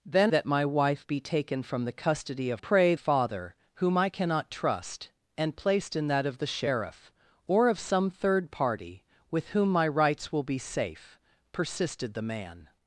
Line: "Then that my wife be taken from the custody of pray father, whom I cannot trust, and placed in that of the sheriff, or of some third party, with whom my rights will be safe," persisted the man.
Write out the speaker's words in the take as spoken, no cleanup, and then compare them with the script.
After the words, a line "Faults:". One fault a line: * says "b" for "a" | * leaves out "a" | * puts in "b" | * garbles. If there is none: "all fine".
"Then that my wife be taken from the custody of pray father, whom I cannot trust, and placed in that of the sheriff, or of some third party, with whom my rights will be safe," persisted the man.
Faults:
all fine